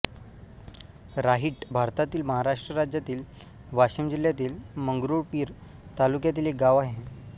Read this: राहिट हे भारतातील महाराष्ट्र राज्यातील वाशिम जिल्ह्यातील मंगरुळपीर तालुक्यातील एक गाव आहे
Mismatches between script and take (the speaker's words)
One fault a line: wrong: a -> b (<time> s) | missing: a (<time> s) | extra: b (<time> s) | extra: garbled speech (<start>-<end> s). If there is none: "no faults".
missing: हे (1.6 s)